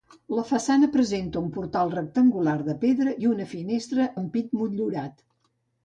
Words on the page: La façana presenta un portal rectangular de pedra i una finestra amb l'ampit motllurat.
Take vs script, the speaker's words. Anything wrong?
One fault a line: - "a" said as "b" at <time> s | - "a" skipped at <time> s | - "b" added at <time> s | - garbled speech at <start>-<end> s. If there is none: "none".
- "amb" skipped at 4.1 s